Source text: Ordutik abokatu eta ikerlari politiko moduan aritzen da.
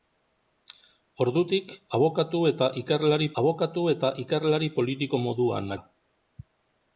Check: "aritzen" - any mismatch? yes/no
yes